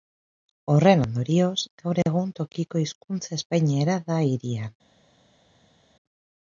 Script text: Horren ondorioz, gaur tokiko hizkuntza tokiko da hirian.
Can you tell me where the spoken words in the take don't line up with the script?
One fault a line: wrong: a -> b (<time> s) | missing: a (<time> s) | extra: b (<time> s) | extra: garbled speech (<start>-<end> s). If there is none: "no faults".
extra: egun (2.0 s)
wrong: tokiko -> espainiera (3.4 s)